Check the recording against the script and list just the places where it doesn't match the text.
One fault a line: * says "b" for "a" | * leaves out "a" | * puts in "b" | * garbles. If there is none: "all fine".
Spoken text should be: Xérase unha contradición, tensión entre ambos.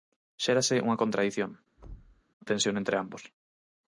all fine